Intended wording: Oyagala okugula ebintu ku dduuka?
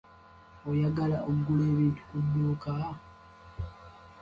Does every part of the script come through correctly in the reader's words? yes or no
yes